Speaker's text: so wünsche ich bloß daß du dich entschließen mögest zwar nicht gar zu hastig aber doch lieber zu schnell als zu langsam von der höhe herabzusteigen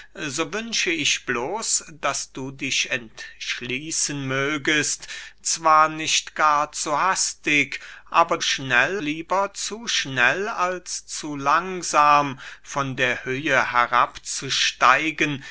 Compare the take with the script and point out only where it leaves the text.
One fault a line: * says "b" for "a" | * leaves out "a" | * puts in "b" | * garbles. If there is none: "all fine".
* says "schnell" for "doch"